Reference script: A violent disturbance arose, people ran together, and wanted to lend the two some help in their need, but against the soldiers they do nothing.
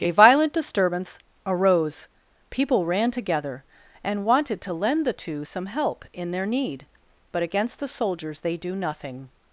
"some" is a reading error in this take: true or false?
false